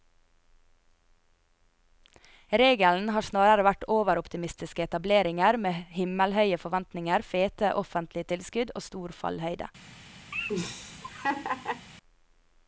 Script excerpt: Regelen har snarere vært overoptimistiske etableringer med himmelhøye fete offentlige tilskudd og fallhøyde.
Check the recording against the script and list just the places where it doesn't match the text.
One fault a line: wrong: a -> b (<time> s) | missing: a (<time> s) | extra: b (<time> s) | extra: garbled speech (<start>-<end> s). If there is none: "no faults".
extra: forventninger (6.6 s)
extra: stor (8.8 s)